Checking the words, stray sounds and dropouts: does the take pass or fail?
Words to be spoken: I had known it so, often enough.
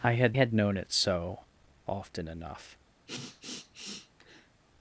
fail